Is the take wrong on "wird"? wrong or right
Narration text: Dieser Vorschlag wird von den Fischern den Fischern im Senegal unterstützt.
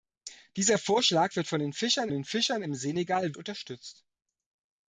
right